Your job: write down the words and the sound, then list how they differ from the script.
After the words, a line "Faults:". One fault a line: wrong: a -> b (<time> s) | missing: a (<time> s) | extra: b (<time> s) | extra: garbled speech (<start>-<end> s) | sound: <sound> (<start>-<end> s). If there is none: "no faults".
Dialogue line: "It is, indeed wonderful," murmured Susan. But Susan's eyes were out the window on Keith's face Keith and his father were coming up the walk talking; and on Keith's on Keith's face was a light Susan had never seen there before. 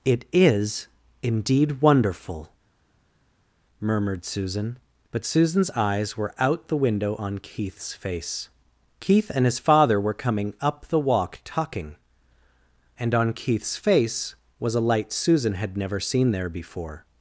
"It is, indeed wonderful," murmured Susan. But Susan's eyes were out the window on Keith's face Keith and his father were coming up the walk talking; and on Keith's face was a light Susan had never seen there before.
Faults:
missing: on Keith's (13.8 s)